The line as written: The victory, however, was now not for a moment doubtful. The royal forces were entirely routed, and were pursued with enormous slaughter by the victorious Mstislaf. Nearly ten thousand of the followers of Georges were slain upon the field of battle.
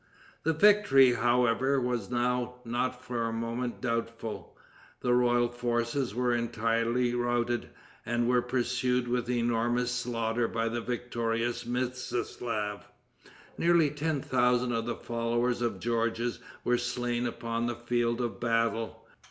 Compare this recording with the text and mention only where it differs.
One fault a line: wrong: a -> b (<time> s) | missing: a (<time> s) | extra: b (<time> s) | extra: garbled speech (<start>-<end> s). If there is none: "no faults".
no faults